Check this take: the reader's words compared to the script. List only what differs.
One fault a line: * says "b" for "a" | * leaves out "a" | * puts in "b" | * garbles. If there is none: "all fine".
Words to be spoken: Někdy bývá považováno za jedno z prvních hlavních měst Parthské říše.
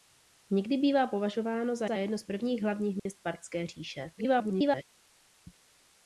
* puts in "za"
* garbles